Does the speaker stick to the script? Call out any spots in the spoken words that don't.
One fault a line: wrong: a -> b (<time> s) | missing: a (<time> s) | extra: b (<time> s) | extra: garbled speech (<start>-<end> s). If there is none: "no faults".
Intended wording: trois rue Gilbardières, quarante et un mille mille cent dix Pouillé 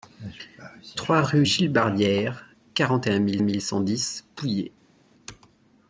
no faults